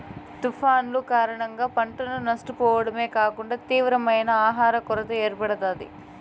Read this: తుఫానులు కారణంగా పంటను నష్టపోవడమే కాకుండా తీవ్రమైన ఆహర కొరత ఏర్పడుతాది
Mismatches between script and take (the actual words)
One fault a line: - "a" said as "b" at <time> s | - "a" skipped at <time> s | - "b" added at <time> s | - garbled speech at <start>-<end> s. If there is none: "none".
none